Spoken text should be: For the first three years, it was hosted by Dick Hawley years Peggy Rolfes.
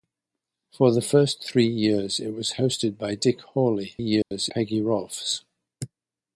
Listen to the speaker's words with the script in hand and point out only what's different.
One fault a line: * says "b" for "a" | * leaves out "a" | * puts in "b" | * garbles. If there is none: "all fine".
all fine